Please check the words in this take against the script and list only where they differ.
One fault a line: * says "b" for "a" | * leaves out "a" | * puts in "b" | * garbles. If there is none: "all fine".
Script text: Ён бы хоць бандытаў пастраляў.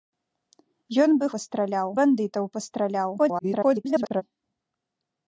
* says "пастраляў" for "хоць"
* garbles